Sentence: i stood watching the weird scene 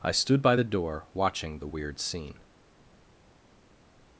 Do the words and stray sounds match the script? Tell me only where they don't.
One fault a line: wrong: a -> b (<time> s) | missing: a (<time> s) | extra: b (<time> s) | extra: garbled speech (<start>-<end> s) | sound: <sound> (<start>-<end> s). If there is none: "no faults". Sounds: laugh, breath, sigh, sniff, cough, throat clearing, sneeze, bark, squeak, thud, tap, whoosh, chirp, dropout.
extra: by the door (0.4 s)